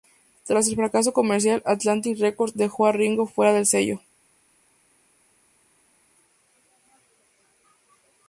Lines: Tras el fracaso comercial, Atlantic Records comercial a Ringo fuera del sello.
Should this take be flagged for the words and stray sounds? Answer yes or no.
yes